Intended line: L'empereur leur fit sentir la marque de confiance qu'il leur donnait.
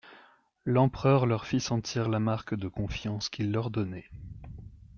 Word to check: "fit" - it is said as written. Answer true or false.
true